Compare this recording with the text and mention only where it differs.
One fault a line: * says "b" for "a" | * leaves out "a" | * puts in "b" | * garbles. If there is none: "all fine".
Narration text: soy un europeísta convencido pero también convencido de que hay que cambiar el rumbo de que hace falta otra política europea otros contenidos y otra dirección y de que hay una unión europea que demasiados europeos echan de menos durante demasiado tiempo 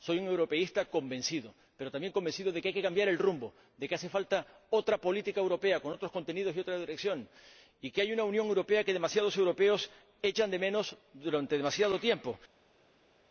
* puts in "con"